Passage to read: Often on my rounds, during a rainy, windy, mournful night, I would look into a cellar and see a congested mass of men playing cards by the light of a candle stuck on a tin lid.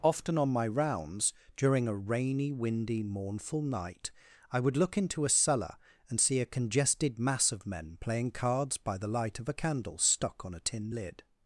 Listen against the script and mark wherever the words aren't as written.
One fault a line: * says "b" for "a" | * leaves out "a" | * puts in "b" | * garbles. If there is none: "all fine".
all fine